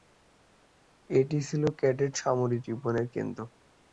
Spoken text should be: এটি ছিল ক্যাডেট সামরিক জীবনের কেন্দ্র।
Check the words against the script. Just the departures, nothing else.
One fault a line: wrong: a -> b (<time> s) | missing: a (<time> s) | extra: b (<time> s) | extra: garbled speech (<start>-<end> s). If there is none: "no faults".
no faults